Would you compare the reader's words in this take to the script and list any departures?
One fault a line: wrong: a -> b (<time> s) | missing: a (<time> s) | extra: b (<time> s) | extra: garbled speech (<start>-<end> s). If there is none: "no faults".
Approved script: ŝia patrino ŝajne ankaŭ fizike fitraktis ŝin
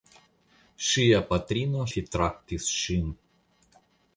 missing: ŝajne ankaŭ fizike (1.8 s)